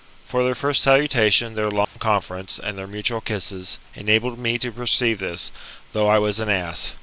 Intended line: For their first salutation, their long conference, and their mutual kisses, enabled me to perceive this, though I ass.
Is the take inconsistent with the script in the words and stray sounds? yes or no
yes